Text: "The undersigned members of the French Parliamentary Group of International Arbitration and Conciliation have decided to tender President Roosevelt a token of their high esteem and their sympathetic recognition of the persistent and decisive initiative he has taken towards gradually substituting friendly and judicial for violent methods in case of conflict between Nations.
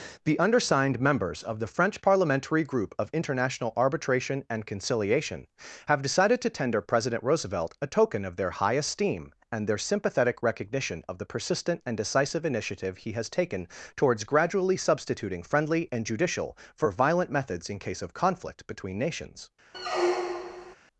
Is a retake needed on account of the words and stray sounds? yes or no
yes